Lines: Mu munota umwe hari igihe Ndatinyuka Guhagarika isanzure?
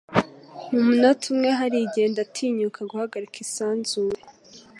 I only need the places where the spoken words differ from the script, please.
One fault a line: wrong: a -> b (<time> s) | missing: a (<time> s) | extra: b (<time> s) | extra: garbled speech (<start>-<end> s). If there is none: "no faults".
no faults